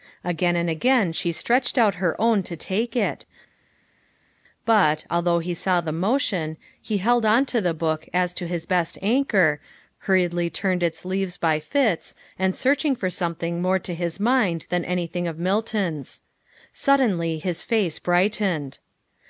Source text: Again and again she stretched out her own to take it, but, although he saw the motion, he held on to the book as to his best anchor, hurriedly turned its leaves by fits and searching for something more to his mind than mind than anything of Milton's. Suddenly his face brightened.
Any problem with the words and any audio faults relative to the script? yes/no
yes